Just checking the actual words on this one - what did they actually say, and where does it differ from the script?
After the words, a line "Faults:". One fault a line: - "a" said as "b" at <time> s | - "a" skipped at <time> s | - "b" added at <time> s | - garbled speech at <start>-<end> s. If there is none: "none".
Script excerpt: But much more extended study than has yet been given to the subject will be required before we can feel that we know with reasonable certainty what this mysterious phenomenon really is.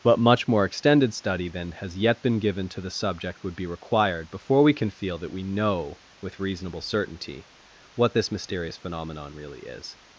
But much more extended study than has yet been given to the subject would be required before we can feel that we know with reasonable certainty what this mysterious phenomenon really is.
Faults:
- "will" said as "would" at 3.4 s